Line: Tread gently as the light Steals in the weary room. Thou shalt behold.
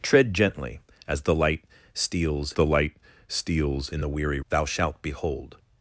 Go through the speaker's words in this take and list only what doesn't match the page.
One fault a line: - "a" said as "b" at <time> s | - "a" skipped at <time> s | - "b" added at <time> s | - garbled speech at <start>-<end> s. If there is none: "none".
- "the light Steals" added at 2.5 s
- "room" skipped at 4.4 s